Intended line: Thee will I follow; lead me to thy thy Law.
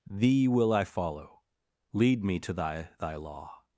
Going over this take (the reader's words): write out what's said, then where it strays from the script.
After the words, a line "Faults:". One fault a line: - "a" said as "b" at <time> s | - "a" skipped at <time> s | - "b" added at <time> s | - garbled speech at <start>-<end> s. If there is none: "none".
Thee will I follow; lead me to thy thy Law.
Faults:
none